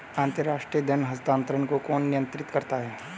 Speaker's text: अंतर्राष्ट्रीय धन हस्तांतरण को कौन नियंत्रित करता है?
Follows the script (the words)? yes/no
yes